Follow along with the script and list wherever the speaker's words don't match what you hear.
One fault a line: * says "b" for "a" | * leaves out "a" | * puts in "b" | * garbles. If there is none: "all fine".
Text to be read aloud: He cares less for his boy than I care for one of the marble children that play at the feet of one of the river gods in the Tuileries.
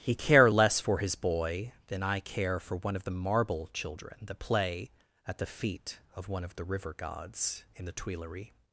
* says "care" for "cares"